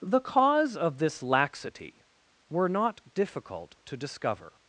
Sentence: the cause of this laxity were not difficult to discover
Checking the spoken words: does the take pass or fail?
pass